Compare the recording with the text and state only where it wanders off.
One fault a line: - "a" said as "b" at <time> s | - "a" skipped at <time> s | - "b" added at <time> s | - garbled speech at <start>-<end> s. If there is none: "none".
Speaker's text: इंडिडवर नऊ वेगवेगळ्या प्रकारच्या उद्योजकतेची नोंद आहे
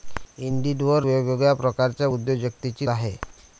- "नऊ" skipped at 1.1 s
- "नोंद" skipped at 2.9 s